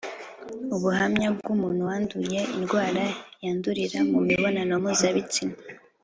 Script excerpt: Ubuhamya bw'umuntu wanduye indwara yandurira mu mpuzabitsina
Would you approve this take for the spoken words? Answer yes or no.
no